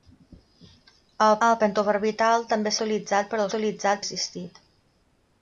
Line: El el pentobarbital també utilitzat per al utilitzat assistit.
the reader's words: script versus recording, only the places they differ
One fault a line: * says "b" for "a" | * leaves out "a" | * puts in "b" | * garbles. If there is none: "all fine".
all fine